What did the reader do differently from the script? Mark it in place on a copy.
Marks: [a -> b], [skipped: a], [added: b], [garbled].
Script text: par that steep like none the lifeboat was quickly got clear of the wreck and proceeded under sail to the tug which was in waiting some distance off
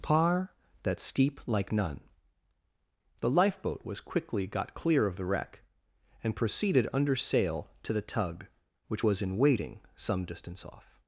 par that steep like none the lifeboat was quickly got clear of the wreck and proceeded under sail to the tug which was in waiting some distance off